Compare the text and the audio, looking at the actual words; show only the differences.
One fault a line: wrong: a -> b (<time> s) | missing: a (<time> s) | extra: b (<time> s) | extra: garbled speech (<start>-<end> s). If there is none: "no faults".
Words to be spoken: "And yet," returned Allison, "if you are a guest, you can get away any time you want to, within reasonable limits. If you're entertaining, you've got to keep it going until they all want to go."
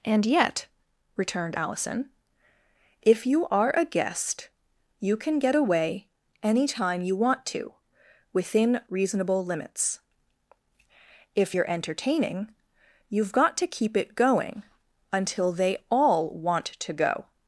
no faults